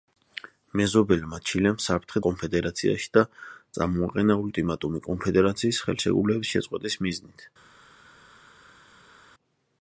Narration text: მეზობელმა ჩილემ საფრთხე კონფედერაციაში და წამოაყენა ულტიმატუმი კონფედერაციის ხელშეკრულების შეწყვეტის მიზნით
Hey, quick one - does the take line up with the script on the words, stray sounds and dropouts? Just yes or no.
yes